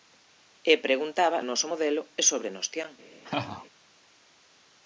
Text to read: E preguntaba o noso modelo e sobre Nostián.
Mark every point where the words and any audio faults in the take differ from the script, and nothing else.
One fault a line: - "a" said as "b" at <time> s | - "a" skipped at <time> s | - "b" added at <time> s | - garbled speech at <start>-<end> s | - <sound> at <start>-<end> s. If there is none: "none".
- laugh at 3.2-3.7 s